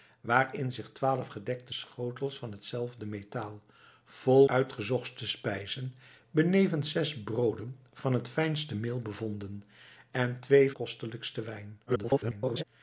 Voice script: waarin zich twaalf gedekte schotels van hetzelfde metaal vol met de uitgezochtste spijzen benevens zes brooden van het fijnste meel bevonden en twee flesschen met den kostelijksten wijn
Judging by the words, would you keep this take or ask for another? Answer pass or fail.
fail